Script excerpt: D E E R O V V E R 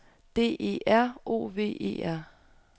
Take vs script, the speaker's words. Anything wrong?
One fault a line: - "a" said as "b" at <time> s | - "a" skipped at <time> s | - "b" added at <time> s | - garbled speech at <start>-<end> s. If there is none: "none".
- "E" skipped at 0.8 s
- "V" skipped at 1.8 s